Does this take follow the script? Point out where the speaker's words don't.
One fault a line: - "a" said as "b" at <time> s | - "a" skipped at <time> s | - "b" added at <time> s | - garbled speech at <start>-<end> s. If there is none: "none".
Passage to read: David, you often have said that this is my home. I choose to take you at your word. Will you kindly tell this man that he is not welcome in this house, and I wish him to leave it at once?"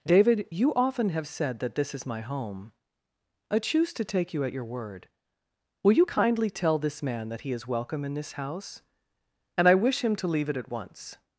- "not" skipped at 7.7 s